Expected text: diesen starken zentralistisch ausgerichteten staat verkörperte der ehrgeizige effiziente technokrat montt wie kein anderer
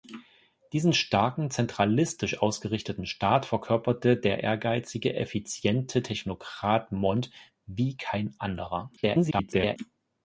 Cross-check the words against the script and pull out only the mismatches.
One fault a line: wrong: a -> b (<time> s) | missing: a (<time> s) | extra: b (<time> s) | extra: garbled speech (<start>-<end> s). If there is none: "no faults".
extra: garbled speech (9.0-9.8 s)